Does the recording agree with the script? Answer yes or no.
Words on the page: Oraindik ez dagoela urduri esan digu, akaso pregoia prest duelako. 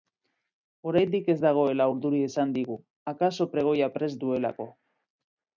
yes